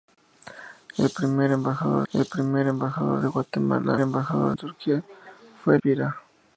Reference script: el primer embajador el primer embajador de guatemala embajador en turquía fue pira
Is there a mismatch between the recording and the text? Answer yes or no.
no